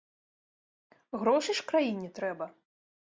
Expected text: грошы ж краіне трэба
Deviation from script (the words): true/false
false